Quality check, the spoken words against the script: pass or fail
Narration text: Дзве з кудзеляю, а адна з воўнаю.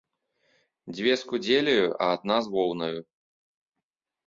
pass